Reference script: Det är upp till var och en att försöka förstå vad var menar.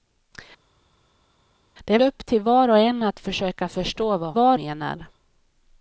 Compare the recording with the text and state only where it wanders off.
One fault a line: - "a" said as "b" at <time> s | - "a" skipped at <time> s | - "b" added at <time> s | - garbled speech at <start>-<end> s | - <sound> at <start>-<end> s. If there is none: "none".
none